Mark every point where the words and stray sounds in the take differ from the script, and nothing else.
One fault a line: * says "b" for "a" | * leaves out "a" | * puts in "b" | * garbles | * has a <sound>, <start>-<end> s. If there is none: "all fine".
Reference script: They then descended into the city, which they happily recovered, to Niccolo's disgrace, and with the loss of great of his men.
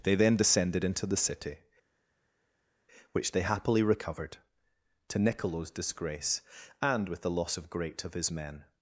all fine